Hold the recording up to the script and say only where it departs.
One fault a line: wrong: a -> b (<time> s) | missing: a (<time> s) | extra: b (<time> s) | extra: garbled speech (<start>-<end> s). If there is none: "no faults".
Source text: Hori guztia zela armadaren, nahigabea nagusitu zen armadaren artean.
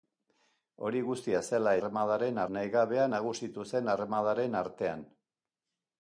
no faults